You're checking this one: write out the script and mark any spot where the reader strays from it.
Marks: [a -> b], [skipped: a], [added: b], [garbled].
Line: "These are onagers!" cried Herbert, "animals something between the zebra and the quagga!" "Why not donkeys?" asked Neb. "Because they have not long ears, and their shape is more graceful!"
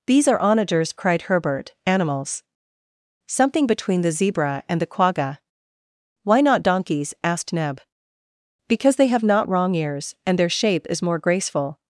"These are onagers!" cried Herbert, "animals something between the zebra and the quagga!" "Why not donkeys?" asked Neb. "Because they have not [long -> wrong] ears, and their shape is more graceful!"